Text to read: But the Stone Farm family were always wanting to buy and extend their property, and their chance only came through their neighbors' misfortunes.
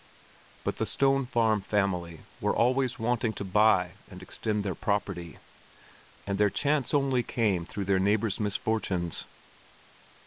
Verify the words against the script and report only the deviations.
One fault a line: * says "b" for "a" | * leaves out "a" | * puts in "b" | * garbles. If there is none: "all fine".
all fine